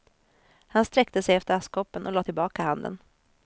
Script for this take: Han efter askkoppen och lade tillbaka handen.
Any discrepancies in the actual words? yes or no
yes